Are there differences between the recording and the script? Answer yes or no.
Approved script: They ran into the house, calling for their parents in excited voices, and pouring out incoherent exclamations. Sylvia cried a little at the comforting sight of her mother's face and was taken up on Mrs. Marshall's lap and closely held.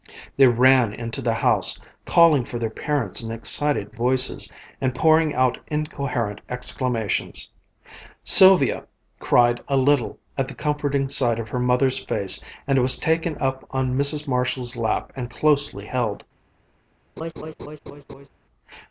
no